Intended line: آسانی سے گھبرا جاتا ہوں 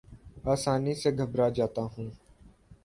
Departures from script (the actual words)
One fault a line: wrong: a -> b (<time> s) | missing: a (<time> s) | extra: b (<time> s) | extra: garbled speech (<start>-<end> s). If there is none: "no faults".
no faults